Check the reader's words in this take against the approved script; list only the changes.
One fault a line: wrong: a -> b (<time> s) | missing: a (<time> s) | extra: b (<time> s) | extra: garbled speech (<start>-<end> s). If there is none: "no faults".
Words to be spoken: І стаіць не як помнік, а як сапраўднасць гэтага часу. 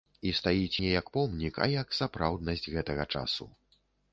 no faults